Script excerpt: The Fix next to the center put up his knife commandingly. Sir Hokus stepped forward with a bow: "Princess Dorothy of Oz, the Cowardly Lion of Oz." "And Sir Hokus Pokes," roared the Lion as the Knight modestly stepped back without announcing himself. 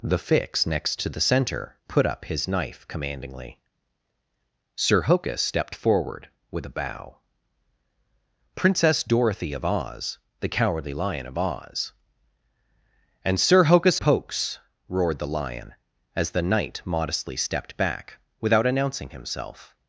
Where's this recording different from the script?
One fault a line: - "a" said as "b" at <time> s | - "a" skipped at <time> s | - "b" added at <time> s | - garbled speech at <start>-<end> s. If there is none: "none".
none